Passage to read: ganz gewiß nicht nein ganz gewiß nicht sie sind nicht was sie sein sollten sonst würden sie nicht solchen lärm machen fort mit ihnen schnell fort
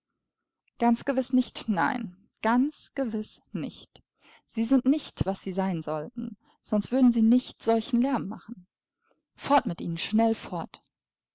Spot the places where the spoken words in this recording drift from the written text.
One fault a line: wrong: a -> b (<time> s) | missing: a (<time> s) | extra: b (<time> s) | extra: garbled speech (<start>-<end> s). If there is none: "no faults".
no faults